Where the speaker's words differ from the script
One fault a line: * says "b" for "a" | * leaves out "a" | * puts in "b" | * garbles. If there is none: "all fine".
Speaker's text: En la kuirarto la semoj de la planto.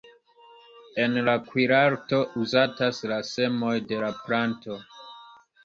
* puts in "uzatas"